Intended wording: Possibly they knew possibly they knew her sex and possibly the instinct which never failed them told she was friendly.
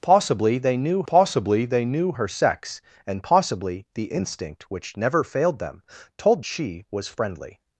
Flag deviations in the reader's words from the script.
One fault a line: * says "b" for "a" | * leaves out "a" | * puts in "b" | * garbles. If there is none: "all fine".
all fine